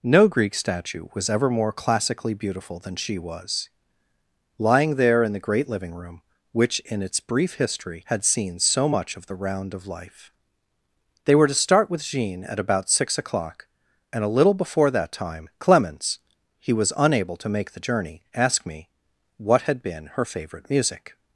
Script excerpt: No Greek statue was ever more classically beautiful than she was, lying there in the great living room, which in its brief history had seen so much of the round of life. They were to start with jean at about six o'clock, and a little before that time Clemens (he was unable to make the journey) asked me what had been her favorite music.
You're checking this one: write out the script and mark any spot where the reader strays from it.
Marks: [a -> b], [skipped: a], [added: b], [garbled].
No Greek statue was ever more classically beautiful than she was, lying there in the great living room, which in its brief history had seen so much of the round of life. They were to start with jean at about six o'clock, and a little before that time Clemens (he was unable to make the journey) asked me what had been her favorite music.